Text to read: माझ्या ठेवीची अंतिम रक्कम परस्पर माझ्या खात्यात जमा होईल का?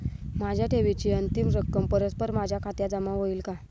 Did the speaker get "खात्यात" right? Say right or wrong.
right